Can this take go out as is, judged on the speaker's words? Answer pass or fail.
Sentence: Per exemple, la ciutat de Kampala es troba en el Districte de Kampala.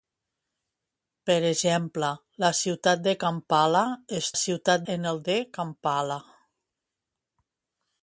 fail